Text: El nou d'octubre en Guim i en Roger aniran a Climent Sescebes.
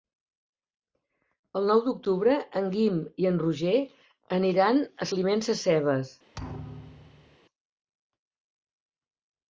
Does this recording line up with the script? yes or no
yes